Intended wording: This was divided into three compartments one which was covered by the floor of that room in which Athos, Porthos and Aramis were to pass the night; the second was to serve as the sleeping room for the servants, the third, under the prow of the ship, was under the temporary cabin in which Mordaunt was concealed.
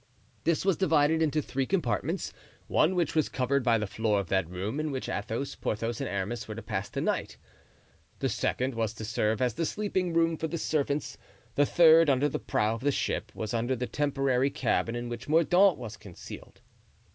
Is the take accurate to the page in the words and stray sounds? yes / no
yes